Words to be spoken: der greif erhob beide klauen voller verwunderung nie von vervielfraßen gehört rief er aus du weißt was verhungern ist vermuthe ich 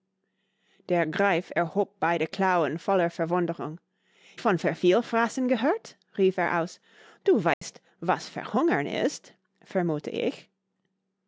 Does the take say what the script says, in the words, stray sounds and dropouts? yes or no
no